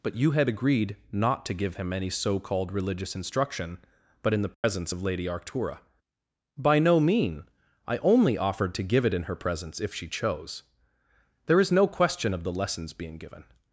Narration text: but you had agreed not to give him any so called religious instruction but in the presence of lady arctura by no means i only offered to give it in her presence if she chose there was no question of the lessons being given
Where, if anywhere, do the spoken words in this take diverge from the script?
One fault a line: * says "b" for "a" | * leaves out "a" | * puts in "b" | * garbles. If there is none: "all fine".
* says "mean" for "means"
* says "is" for "was"